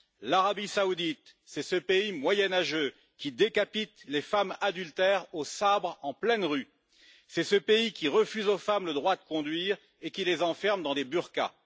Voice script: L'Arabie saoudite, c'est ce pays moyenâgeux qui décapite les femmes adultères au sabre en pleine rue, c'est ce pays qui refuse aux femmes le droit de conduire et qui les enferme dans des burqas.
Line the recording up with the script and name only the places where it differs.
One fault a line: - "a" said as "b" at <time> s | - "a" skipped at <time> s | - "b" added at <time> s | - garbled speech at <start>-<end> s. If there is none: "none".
none